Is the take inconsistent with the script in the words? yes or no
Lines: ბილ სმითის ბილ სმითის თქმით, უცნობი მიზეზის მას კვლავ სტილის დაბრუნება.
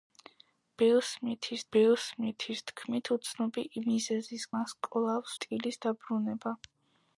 no